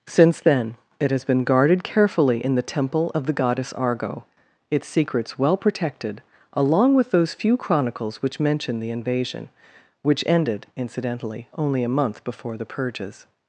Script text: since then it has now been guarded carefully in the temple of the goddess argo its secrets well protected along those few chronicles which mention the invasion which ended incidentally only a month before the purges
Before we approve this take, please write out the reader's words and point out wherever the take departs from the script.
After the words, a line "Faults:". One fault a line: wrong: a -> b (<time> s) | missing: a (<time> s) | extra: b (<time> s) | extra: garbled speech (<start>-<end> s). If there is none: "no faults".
since then it has been guarded carefully in the temple of the goddess argo its secrets well protected along with those few chronicles which mention the invasion which ended incidentally only a month before the purges
Faults:
missing: now (1.2 s)
extra: with (6.9 s)